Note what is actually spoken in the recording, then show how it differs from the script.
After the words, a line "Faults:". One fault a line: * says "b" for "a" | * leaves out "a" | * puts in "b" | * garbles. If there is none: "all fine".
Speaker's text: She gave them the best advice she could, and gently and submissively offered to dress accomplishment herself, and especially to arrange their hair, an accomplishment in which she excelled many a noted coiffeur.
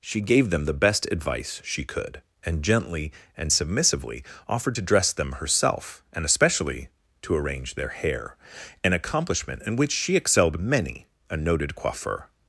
She gave them the best advice she could, and gently and submissively offered to dress them herself, and especially to arrange their hair, an accomplishment in which she excelled many a noted coiffeur.
Faults:
* says "them" for "accomplishment"